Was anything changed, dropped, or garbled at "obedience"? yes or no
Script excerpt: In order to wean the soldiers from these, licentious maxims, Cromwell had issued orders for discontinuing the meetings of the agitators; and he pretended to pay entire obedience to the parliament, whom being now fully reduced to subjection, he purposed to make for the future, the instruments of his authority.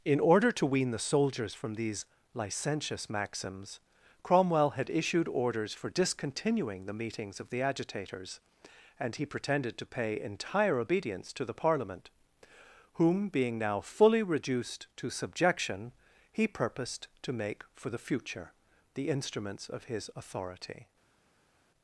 no